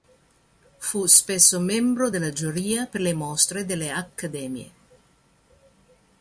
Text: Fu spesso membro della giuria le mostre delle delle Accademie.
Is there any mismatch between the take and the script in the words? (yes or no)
yes